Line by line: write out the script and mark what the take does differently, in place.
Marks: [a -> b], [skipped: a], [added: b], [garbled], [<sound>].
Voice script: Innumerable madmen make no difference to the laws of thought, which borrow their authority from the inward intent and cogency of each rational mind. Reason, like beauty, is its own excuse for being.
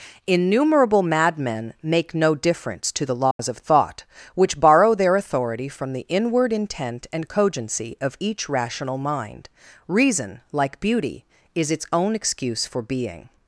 Innumerable madmen make no difference to the laws [dropout] of thought, which borrow their authority from the inward intent and cogency of each rational mind. Reason, like beauty, is its own excuse for being.